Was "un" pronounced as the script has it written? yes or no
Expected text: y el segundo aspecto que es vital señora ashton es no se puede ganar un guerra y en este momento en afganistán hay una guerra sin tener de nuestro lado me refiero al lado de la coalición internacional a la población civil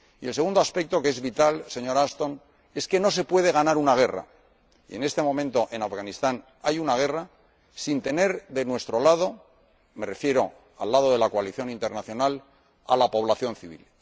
no